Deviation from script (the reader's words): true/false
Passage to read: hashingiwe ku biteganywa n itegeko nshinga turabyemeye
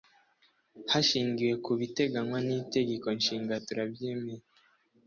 false